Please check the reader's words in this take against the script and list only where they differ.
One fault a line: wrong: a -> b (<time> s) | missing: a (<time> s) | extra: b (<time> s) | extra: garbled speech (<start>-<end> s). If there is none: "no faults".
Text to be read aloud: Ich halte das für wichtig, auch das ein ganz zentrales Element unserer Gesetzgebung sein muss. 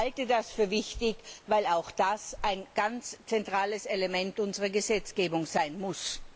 extra: weil (1.4 s)